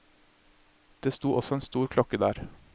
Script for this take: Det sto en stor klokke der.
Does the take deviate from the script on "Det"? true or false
false